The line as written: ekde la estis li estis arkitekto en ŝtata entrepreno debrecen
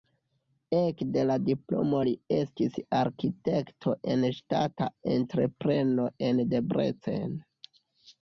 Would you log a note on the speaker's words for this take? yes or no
yes